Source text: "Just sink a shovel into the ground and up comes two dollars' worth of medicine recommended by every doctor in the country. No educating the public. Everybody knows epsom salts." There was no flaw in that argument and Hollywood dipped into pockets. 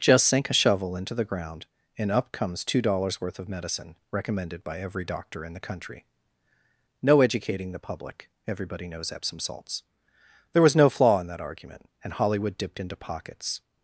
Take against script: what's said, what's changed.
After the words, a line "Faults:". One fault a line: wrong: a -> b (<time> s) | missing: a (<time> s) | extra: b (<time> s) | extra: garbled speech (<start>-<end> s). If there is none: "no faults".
"Just sink a shovel into the ground and up comes two dollars' worth of medicine recommended by every doctor in the country. No educating the public. Everybody knows epsom salts." There was no flaw in that argument and Hollywood dipped into pockets.
Faults:
no faults